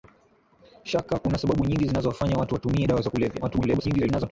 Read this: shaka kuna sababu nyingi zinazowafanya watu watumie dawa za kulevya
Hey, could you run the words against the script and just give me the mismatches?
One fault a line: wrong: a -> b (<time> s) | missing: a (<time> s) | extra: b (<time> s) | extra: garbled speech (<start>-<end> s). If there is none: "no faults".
extra: garbled speech (3.4-4.3 s)